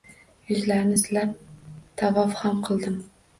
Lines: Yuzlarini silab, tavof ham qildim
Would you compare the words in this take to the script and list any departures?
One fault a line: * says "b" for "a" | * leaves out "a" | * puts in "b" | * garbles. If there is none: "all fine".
all fine